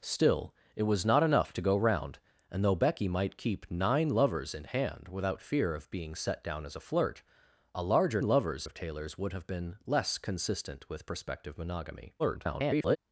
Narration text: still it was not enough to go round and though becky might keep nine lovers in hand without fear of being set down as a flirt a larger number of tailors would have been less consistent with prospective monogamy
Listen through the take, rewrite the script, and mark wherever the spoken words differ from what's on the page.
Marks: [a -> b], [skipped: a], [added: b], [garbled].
still it was not enough to go round and though becky might keep nine lovers in hand without fear of being set down as a flirt a larger [number -> lovers] of tailors would have been less consistent with prospective monogamy [garbled]